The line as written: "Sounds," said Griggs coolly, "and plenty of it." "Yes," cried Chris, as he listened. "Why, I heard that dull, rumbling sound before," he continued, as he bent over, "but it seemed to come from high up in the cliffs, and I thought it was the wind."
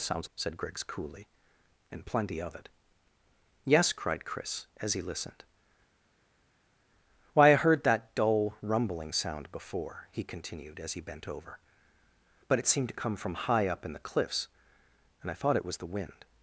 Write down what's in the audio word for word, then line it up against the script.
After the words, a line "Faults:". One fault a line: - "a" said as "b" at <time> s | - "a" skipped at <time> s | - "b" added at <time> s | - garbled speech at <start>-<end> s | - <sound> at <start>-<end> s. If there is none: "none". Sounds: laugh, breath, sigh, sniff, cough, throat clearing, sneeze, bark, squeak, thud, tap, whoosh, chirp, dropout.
"Sounds," said Griggs coolly, "and plenty of it." "Yes," cried Chris, as he listened. "Why, I heard that dull, rumbling sound before," he continued, as he bent over, "but it seemed to come from high up in the cliffs, and I thought it was the wind."
Faults:
none